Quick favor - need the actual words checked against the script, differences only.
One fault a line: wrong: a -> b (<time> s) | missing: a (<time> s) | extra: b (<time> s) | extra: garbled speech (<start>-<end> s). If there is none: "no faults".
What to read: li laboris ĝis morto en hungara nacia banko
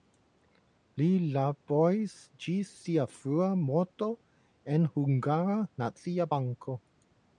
extra: sia frua (2.9 s)